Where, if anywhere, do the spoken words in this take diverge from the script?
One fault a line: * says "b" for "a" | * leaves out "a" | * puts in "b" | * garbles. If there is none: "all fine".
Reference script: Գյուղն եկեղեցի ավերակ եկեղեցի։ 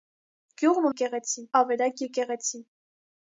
all fine